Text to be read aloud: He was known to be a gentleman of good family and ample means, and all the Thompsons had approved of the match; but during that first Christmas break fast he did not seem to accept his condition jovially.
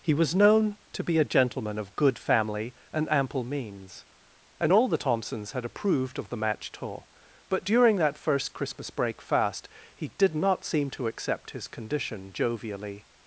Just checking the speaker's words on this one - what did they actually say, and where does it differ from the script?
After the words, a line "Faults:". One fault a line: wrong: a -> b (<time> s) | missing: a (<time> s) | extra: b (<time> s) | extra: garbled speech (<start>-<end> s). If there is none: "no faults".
He was known to be a gentleman of good family and ample means, and all the Thompsons had approved of the match; tour but during that first Christmas break fast he did not seem to accept his condition jovially.
Faults:
extra: tour (6.7 s)